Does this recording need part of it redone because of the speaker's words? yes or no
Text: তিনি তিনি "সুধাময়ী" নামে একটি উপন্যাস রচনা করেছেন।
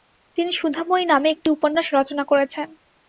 yes